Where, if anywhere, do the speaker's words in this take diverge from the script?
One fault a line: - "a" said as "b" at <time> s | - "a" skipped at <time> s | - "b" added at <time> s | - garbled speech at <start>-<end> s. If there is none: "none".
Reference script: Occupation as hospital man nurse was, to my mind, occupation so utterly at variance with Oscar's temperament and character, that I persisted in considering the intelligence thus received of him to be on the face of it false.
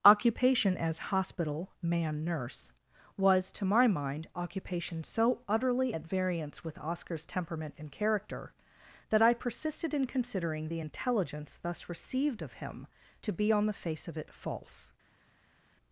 none